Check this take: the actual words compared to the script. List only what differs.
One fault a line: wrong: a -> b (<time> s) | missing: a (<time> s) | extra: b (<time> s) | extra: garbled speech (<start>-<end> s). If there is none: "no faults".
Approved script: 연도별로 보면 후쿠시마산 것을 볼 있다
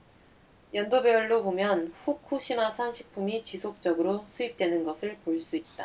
extra: 식품이 지속적으로 수입되는 (2.9 s)
extra: 수 (5.4 s)